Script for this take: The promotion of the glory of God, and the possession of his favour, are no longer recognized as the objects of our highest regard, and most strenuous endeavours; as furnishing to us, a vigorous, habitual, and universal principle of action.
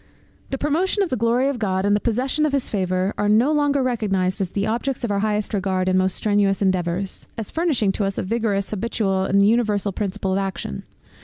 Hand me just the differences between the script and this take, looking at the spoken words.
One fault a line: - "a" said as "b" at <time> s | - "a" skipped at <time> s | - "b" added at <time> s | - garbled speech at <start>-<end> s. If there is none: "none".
none